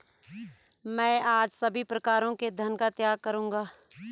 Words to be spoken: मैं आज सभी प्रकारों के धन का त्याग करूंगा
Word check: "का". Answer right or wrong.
right